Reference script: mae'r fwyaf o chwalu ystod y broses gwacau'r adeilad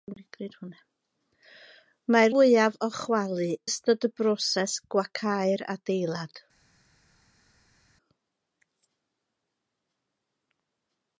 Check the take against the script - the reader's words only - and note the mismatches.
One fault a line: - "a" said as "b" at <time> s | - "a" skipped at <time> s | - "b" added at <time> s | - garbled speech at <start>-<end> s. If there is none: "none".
none